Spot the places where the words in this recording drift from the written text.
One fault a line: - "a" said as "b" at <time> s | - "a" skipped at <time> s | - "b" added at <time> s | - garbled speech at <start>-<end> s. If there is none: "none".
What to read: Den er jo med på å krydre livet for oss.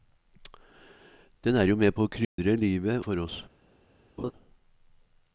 none